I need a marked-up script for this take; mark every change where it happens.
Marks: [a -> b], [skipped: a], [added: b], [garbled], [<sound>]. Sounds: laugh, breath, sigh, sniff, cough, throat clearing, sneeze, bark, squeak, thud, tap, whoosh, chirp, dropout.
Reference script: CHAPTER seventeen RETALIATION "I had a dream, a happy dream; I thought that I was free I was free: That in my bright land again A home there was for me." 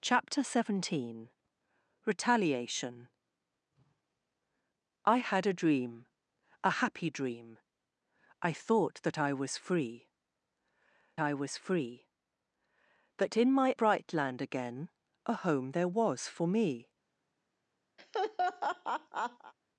CHAPTER seventeen RETALIATION "I had a dream, a happy dream; I thought that I was free I was free: That in my bright land again A home there was for me." [laugh]